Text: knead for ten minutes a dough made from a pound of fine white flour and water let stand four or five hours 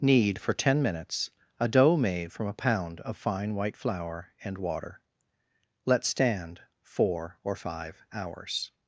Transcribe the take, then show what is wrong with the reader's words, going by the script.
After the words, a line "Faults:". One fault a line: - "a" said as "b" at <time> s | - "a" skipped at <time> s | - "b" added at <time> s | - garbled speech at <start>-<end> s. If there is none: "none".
knead for ten minutes a dough made from a pound of fine white flour and water let stand four or five hours
Faults:
none